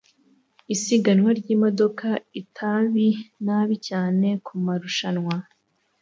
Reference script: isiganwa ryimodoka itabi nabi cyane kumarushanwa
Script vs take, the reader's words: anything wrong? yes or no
no